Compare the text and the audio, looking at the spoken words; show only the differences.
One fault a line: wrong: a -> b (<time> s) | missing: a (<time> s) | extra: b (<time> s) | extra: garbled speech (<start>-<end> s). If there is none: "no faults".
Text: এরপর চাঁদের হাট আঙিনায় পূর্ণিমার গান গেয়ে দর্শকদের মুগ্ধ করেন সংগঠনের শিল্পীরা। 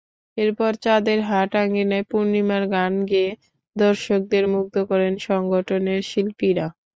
no faults